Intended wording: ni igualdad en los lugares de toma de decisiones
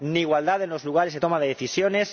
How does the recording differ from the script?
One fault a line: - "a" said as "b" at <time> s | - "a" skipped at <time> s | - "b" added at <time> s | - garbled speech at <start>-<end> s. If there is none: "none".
none